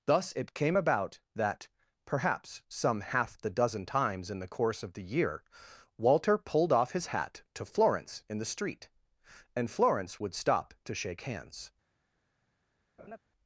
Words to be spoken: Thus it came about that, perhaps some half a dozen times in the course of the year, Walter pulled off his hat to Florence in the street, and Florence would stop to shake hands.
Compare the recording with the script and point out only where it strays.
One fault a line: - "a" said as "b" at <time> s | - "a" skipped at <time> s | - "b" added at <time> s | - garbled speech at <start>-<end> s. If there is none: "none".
- "a" said as "the" at 3.4 s